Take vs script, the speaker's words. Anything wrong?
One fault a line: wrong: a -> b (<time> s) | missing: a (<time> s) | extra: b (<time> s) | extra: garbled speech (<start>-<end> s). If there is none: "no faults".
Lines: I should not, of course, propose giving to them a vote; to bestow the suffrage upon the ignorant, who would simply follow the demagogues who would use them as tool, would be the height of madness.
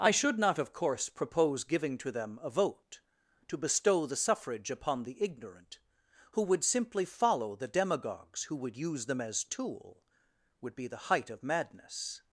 no faults